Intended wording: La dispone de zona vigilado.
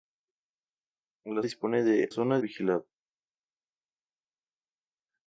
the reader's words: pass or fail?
pass